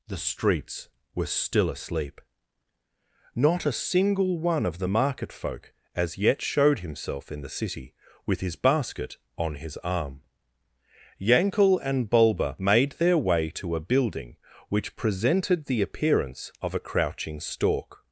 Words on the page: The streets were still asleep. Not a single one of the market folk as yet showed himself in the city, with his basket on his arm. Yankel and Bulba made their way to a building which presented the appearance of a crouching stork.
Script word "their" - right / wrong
right